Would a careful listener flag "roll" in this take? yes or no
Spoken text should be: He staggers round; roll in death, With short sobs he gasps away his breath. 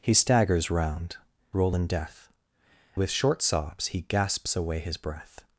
no